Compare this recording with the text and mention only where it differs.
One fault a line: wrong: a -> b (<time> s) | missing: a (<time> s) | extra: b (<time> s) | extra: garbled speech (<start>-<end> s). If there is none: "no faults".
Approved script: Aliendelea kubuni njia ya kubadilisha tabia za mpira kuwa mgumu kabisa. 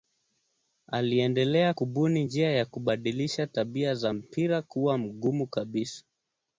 no faults